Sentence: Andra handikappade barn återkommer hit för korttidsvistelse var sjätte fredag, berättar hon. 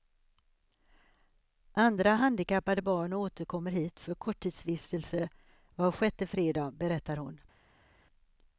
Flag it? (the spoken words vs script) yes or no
no